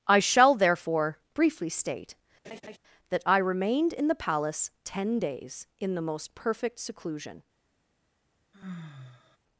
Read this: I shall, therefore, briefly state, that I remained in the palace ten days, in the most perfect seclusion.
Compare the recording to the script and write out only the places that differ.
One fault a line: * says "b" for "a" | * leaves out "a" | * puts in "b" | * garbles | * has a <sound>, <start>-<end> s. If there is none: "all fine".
* has a laugh, 2.4-2.8 s
* has a sigh, 8.5-9.4 s